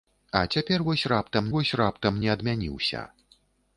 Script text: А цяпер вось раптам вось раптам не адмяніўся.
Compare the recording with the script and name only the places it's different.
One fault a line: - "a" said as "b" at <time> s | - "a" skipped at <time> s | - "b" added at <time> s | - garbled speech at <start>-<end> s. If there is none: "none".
none